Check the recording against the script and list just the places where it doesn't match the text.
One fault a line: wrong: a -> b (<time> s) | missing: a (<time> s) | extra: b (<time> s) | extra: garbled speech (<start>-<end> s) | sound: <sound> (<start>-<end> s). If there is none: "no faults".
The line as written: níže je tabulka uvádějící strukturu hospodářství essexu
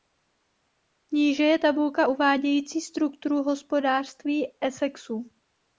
no faults